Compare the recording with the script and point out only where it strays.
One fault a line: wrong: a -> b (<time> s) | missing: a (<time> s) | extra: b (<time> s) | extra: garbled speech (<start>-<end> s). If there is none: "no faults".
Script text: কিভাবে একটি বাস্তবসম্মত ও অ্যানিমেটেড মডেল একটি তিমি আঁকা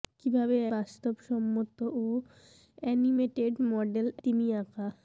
missing: একটি (0.6 s)
missing: একটি (4.1 s)